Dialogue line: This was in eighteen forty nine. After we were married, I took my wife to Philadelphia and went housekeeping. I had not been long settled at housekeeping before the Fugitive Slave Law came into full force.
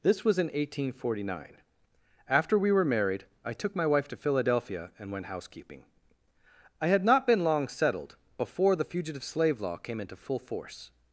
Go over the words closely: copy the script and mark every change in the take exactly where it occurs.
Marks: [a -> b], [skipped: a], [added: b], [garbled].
This was in eighteen forty nine. After we were married, I took my wife to Philadelphia and went housekeeping. I had not been long settled [skipped: at housekeeping] before the Fugitive Slave Law came into full force.